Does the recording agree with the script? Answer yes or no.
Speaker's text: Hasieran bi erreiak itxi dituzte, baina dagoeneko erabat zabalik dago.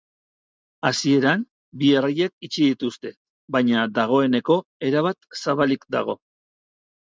yes